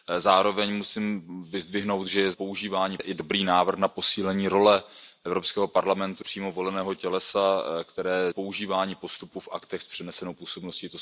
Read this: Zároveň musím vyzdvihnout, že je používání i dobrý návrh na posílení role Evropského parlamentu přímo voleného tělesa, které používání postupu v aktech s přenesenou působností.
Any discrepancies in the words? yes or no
no